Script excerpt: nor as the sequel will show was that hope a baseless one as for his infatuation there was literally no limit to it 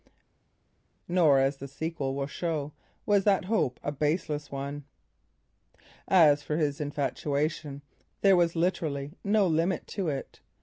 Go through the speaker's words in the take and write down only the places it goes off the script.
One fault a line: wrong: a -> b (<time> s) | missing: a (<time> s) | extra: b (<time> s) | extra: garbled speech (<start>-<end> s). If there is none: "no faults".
no faults